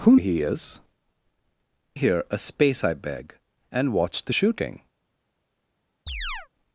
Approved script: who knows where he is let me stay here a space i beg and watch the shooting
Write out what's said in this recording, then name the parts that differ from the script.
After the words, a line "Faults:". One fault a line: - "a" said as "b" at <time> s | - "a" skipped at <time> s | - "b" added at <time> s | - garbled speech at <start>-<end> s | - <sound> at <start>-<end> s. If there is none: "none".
who he is here a space i beg and watch the shooting
Faults:
- "knows where" skipped at 0.1 s
- "let me stay" skipped at 0.8 s
- chirp at 6.1-6.5 s